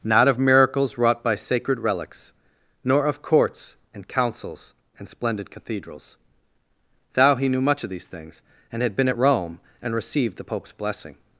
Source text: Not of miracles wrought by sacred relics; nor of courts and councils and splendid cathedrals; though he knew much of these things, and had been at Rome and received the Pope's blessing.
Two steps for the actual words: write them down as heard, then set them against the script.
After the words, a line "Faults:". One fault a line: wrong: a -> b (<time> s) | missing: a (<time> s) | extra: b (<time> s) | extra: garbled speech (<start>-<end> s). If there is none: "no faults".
Not of miracles wrought by sacred relics; nor of courts and councils and splendid cathedrals; thou he knew much of these things, and had been at Rome and received the Pope's blessing.
Faults:
wrong: though -> thou (7.1 s)